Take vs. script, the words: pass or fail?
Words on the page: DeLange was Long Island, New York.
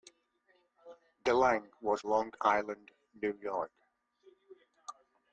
pass